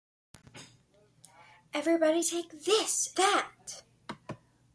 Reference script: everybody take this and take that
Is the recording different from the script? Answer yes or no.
yes